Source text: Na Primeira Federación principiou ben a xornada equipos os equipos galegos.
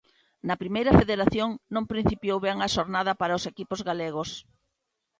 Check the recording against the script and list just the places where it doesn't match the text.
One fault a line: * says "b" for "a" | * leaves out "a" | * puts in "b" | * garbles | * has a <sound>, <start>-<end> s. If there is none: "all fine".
* puts in "non"
* says "para" for "equipos"